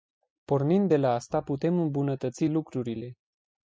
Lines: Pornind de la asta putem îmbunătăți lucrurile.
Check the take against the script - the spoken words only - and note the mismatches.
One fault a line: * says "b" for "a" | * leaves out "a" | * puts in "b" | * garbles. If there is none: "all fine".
all fine